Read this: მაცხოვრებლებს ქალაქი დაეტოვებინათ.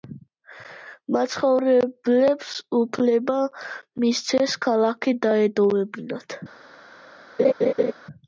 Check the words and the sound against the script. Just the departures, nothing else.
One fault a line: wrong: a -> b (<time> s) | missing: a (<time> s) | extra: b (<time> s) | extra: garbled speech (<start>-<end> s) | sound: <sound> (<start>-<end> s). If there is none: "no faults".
extra: უფლება მისცეს (2.8 s)
sound: laugh (7.4-7.9 s)